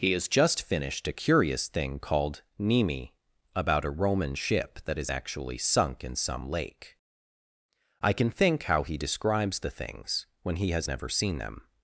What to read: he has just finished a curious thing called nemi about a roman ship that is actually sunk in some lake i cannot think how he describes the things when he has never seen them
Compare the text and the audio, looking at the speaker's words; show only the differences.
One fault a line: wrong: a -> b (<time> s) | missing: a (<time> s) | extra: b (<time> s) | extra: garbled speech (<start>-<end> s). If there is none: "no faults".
wrong: cannot -> can (8.1 s)